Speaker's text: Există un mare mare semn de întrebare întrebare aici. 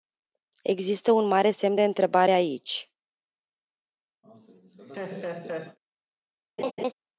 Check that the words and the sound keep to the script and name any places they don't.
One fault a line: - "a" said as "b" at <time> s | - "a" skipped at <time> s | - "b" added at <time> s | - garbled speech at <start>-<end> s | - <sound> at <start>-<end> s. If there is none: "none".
- "mare" skipped at 1.5 s
- "întrebare" skipped at 2.3 s
- laugh at 4.2-5.8 s
- laugh at 6.6-6.9 s